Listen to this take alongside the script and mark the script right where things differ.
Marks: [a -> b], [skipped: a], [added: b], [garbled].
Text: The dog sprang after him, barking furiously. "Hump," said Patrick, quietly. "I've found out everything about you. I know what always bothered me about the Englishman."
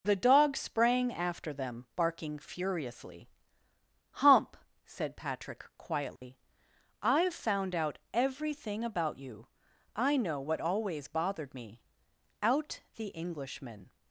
The dog sprang after [him, -> them] barking furiously. "Hump," said Patrick, quietly. "I've found out everything about you. I know what always bothered me [about -> out] the Englishman."